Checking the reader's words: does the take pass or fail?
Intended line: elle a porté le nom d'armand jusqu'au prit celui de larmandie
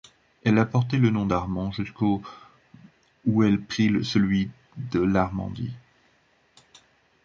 fail